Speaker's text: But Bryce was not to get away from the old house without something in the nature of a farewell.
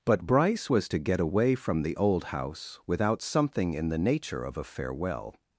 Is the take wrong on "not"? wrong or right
wrong